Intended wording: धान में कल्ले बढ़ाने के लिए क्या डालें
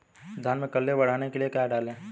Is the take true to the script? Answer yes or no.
yes